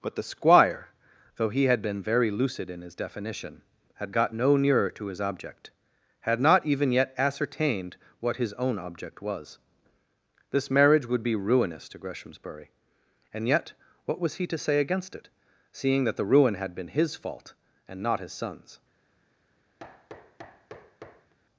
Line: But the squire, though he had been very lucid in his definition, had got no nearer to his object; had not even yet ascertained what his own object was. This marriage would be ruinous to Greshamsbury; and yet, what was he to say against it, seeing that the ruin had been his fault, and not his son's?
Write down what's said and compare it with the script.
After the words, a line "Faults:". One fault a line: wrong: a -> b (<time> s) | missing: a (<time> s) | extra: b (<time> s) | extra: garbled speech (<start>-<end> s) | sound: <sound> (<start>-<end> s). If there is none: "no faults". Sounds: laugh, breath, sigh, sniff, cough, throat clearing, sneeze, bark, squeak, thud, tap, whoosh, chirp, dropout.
But the squire, though he had been very lucid in his definition, had got no nearer to his object; had not even yet ascertained what his own object was. This marriage would be ruinous to Greshamsbury; and yet, what was he to say against it, seeing that the ruin had been his fault, and not his son's?
Faults:
sound: thud (19.8-21.3 s)